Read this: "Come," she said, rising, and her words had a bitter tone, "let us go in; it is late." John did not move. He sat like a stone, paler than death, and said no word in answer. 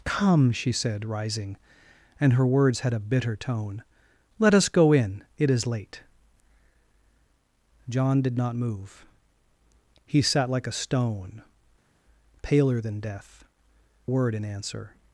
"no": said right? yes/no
no